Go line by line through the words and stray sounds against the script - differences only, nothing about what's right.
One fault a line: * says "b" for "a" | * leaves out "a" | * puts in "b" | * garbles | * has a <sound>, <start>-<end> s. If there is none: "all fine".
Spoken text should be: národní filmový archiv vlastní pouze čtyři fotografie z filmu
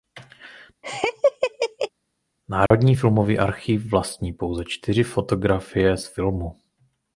* has a laugh, 0.8-1.9 s
* has a dropout, 2.7-2.7 s